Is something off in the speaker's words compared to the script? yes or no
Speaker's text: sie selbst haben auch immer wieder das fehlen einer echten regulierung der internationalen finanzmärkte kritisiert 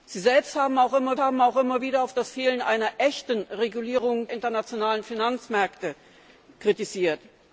yes